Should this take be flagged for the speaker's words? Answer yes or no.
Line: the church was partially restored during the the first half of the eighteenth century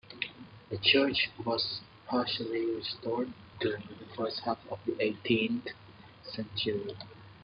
no